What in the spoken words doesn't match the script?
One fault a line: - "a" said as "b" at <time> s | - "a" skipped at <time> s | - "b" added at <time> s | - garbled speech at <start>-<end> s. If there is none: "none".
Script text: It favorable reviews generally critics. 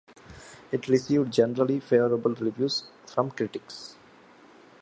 - "received generally" added at 0.9 s
- "generally" said as "from" at 3.0 s